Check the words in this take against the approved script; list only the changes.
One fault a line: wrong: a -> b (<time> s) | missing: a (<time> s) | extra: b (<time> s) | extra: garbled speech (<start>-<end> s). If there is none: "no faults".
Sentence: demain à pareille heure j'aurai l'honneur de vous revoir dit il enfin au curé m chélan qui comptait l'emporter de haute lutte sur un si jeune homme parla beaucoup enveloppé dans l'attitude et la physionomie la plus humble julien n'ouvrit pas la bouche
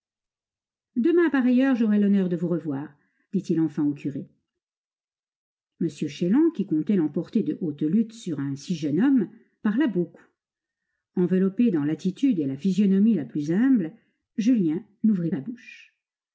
missing: pas (15.3 s)